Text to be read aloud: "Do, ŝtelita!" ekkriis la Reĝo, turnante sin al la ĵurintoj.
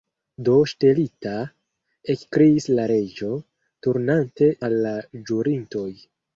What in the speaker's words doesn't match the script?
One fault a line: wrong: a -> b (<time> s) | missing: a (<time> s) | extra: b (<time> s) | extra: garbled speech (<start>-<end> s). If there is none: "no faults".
missing: sin (4.5 s)